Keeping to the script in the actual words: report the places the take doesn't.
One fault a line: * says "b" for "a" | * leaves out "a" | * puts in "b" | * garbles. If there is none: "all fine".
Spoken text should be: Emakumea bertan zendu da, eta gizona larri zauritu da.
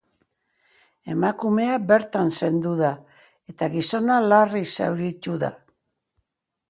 all fine